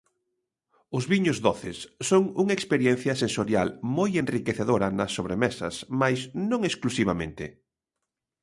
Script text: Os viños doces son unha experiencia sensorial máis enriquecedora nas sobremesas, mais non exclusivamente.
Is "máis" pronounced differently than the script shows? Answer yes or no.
yes